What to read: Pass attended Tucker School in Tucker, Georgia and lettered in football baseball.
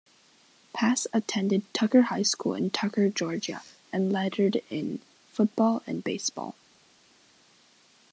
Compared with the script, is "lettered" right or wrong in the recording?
right